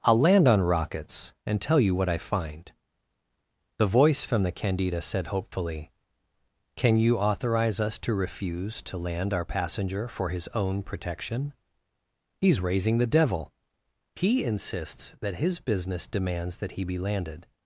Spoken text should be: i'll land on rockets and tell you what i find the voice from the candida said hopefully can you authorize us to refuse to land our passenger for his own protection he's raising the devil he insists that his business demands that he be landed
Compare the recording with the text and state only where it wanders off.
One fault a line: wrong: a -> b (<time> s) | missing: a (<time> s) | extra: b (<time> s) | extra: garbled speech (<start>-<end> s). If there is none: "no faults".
no faults